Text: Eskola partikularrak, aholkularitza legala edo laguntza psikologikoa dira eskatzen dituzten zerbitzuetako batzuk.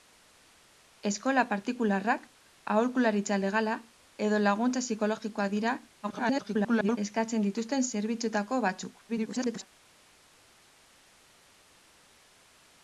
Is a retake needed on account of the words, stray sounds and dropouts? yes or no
yes